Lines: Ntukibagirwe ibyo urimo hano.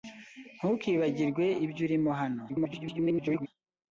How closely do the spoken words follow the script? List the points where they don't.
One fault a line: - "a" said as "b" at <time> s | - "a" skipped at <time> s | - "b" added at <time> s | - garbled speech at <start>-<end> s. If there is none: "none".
- garbled speech at 2.5-3.5 s